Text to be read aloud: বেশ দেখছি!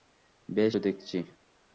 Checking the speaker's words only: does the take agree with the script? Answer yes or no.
yes